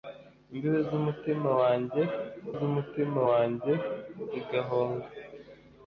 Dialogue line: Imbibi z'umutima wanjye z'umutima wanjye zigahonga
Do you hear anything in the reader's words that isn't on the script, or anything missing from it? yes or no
no